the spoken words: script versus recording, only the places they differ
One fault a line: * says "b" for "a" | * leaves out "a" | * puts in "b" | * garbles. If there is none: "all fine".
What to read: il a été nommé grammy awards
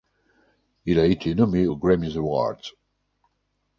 * puts in "aux"